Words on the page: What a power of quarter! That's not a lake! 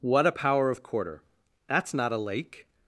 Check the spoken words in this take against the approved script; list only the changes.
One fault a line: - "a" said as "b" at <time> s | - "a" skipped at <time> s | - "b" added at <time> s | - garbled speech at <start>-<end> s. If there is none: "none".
none